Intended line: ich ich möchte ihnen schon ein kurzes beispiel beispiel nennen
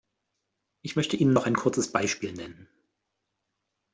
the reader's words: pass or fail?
fail